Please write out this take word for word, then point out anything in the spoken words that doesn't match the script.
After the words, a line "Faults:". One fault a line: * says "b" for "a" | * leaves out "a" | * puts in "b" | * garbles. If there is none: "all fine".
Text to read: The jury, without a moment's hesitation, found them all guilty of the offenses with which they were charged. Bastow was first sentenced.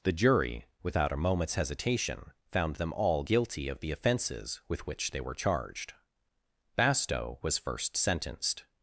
The jury, without a moment's hesitation, found them all guilty of the offenses with which they were charged. Bastow was first sentenced.
Faults:
all fine